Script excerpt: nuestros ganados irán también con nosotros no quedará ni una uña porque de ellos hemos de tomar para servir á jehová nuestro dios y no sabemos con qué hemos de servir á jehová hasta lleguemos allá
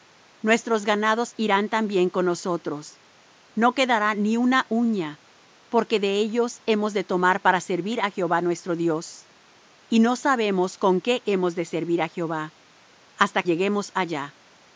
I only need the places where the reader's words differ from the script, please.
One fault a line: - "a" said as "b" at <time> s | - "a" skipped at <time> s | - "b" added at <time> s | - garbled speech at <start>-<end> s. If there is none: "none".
none